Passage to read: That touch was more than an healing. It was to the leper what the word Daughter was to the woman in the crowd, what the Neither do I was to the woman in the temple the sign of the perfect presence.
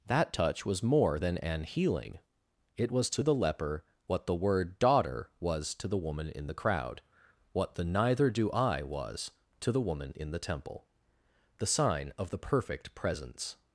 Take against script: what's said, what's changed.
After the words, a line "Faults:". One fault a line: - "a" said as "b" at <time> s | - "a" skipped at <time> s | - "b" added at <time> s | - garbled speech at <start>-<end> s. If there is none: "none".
That touch was more than an healing. It was to the leper what the word Daughter was to the woman in the crowd, what the Neither do I was to the woman in the temple the sign of the perfect presence.
Faults:
none